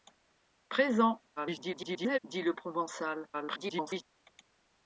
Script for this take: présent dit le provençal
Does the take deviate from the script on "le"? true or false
false